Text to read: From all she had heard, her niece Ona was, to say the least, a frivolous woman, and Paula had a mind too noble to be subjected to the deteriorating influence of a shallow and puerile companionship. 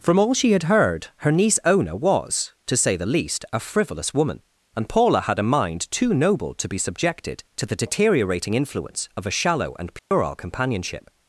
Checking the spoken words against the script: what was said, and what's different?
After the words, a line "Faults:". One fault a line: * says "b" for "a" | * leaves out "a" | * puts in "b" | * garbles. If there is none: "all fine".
From all she had heard, her niece Ona was, to say the least, a frivolous woman, and Paula had a mind too noble to be subjected to the deteriorating influence of a shallow and puerile companionship.
Faults:
all fine